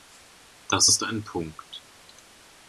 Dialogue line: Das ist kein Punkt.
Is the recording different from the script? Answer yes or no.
yes